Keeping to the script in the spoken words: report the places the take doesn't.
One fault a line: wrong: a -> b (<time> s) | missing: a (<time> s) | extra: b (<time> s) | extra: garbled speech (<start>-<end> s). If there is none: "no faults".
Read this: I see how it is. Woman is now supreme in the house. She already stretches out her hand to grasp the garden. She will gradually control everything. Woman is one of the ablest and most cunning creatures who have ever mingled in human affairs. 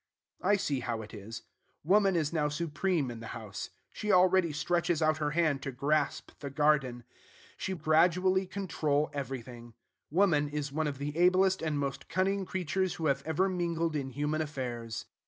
missing: will (7.7 s)